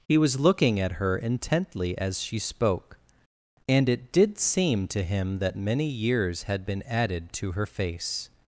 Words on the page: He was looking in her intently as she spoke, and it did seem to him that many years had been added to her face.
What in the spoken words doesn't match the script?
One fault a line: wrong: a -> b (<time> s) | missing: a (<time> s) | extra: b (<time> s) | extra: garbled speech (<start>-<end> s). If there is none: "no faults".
wrong: in -> at (0.8 s)